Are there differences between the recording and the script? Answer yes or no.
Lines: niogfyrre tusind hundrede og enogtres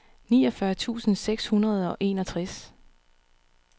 yes